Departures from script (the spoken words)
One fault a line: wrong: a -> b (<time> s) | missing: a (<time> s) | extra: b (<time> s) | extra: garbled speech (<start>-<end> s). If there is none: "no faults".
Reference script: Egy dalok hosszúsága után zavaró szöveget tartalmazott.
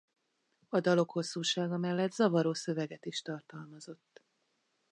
wrong: Egy -> A (0.7 s)
wrong: után -> mellett (1.8 s)
extra: is (3.0 s)